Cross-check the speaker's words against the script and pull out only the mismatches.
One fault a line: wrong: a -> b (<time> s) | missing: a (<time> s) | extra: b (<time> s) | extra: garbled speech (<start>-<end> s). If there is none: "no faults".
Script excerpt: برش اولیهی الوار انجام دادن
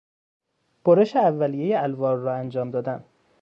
extra: را (2.2 s)